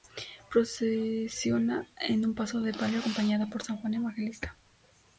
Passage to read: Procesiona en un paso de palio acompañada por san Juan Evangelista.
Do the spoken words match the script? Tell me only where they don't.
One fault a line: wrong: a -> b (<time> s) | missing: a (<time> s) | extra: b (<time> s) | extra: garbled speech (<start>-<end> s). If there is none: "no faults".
no faults